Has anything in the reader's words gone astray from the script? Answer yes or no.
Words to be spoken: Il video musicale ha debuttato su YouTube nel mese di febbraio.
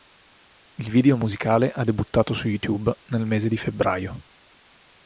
no